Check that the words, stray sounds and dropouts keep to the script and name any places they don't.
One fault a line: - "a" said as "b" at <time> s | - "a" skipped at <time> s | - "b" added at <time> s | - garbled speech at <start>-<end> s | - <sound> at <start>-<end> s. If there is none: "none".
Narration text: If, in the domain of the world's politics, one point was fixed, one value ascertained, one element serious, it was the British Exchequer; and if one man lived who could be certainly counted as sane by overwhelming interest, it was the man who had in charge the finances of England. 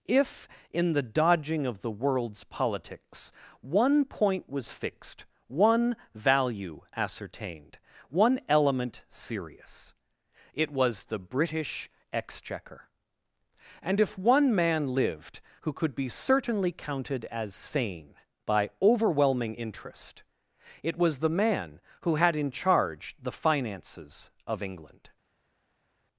- "domain" said as "dodging" at 1.0 s